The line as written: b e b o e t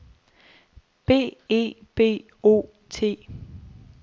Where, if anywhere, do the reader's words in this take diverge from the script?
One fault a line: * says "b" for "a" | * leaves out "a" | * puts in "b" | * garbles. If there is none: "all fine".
* leaves out "e"